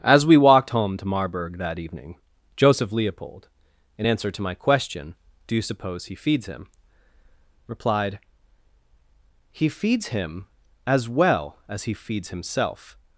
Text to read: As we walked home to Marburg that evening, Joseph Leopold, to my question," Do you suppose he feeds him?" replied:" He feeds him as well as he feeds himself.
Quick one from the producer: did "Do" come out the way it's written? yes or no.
yes